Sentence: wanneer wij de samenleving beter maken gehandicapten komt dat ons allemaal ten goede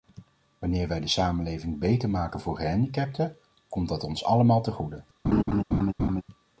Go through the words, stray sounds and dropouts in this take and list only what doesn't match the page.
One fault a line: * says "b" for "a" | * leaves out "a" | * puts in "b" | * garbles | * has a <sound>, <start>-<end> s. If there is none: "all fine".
* puts in "voor"
* has a laugh, 5.2-6.2 s